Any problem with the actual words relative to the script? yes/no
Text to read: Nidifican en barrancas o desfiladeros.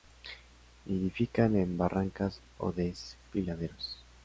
no